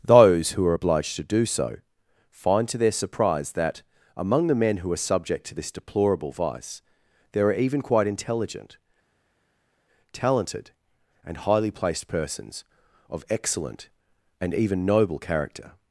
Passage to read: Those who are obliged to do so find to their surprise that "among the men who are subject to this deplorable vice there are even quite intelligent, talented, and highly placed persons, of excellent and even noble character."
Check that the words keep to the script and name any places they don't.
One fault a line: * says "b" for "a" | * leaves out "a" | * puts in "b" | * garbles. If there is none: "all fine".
all fine